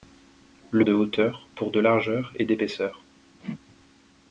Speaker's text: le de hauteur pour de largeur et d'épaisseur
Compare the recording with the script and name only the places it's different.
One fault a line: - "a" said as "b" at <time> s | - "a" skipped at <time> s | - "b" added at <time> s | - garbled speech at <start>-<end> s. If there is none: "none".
none